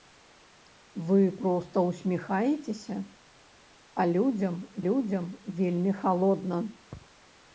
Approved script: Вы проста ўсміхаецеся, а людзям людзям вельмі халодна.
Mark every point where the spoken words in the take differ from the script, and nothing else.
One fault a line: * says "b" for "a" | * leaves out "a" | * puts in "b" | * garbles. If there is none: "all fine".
all fine